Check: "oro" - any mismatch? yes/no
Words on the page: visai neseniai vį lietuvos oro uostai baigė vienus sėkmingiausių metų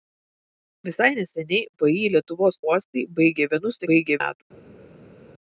yes